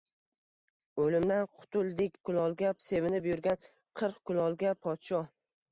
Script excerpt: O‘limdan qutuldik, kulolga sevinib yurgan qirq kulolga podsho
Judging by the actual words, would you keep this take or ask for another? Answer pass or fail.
pass